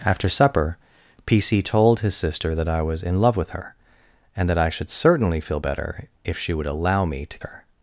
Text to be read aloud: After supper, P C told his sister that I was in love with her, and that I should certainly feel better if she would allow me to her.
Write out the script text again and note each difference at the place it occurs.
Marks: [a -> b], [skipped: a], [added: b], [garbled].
After supper, P C told his sister that I was in love with her, and that I should certainly feel better if she would allow me to her.